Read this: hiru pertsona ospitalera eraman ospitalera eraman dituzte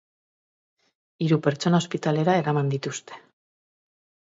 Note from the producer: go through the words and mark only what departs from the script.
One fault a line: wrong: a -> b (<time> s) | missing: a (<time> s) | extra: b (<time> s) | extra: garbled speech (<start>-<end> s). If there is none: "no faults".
missing: ospitalera eraman (2.8 s)